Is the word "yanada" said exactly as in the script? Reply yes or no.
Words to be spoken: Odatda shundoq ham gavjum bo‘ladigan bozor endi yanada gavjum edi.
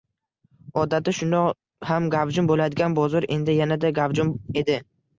yes